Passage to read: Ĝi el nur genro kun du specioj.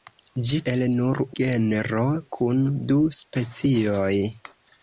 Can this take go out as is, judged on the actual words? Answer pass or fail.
pass